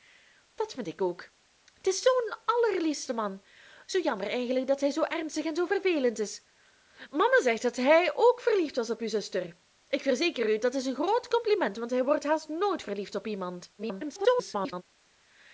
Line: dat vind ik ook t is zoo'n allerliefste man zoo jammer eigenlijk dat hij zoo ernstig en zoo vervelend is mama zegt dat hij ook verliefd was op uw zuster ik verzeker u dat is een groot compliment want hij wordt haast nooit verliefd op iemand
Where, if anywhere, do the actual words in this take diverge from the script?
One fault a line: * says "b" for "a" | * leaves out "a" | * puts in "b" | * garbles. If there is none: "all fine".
* garbles